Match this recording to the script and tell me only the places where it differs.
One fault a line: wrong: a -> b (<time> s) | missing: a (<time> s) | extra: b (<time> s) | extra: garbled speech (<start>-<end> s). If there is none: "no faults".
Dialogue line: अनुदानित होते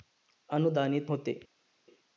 no faults